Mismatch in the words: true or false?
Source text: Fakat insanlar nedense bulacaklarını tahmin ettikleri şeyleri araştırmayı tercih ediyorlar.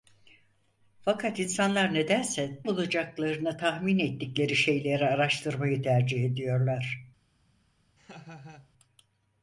false